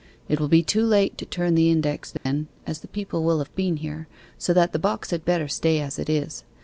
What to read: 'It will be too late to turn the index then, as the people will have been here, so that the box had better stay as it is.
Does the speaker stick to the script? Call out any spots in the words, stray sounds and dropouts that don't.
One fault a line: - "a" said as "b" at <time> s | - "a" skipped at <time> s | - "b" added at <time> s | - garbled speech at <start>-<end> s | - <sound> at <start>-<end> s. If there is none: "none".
- dropout at 2.2-2.3 s